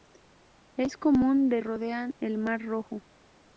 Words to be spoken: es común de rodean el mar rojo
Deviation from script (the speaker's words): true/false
false